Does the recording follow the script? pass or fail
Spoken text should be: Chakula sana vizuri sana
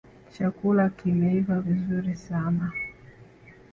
fail